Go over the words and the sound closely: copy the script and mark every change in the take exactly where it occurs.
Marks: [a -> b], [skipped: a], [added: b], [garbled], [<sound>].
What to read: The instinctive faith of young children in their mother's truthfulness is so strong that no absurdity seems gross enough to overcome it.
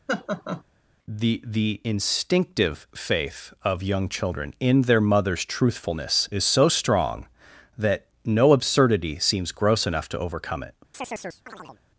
[laugh] The [added: the] instinctive faith of young children in their mother's truthfulness is so strong that no absurdity seems gross enough to overcome it. [chirp]